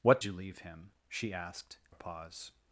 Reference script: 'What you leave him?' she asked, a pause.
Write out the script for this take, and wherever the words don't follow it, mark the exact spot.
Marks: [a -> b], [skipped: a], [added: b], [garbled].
'What you leave him?' she asked, a pause.